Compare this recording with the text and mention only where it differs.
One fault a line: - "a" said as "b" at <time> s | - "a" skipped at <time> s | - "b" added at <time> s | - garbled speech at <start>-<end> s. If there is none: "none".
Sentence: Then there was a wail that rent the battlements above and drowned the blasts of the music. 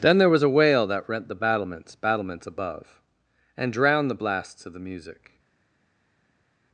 - "battlements" added at 1.9 s